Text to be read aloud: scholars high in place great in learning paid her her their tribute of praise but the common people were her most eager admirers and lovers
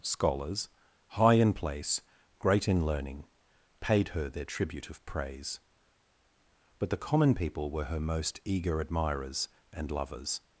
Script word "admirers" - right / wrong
right